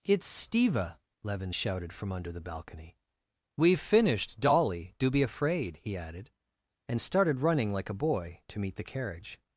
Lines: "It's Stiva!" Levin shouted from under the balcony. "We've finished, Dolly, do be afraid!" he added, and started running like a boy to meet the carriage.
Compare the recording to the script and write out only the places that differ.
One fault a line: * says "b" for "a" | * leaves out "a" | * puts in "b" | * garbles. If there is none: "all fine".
all fine